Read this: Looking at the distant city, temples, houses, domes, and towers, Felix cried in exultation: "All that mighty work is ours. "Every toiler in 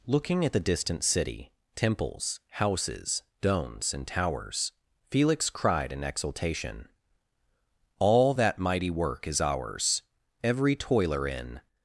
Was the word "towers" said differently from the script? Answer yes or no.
no